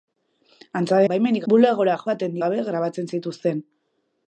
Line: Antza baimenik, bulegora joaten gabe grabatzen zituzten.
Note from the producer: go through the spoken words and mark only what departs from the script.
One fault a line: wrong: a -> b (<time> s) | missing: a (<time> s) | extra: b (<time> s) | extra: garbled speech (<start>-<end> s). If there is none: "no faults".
no faults